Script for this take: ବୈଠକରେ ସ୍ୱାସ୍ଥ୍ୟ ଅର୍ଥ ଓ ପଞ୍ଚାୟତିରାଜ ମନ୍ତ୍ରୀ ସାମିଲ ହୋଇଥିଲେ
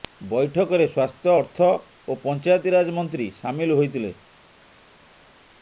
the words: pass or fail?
pass